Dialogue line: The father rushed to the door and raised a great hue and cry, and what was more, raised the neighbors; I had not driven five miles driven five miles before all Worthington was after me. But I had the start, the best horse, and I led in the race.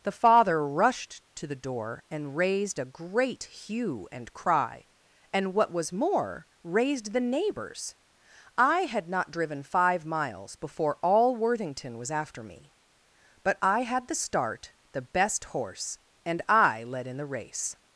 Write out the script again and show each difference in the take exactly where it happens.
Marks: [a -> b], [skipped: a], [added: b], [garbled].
The father rushed to the door and raised a great hue and cry, and what was more, raised the neighbors; I had not driven five miles [skipped: driven five miles] before all Worthington was after me. But I had the start, the best horse, and I led in the race.